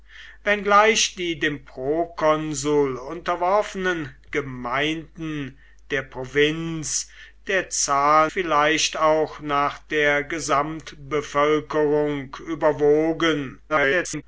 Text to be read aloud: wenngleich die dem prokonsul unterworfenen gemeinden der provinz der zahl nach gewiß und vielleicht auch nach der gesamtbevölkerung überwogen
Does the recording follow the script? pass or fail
fail